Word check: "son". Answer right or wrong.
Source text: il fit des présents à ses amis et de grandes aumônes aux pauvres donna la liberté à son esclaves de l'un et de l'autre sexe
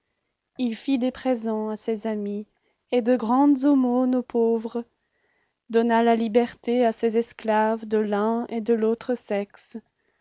wrong